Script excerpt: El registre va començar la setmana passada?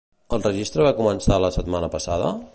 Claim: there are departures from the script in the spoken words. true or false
false